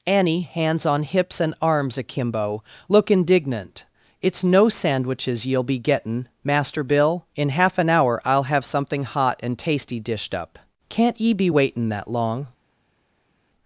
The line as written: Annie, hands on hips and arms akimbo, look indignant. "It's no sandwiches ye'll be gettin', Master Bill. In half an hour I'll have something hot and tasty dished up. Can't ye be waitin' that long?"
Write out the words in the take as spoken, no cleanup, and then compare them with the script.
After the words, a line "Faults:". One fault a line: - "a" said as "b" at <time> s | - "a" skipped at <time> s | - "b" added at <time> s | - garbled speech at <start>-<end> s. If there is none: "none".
Annie, hands on hips and arms akimbo, look indignant. "It's no sandwiches ye'll be gettin', Master Bill. In half an hour I'll have something hot and tasty dished up. Can't ye be waitin' that long?"
Faults:
none